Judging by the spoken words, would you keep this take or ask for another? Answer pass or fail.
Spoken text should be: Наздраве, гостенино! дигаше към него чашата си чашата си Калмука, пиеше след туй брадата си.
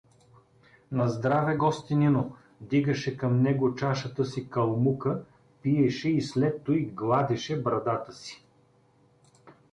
fail